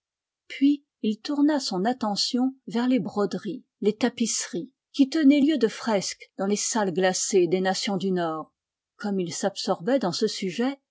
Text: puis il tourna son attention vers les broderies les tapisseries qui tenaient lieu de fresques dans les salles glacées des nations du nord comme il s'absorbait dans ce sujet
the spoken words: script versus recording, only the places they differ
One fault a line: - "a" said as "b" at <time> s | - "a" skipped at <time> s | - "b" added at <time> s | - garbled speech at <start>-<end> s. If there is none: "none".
none